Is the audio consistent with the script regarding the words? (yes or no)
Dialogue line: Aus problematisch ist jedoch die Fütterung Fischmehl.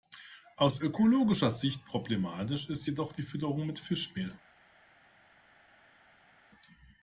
no